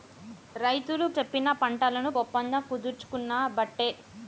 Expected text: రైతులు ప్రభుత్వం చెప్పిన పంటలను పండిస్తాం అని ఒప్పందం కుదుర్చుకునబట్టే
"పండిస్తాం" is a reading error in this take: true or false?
true